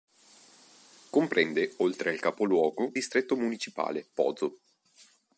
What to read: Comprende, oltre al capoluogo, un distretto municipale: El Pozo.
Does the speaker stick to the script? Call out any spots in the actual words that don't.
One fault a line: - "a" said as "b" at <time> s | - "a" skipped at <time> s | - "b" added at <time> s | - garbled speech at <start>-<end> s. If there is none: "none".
- "un" skipped at 3.0 s
- "El" skipped at 4.1 s